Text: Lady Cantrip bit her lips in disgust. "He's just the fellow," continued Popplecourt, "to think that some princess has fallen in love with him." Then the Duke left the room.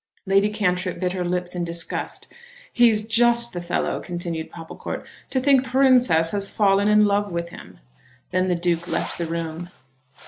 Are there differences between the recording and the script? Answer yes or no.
yes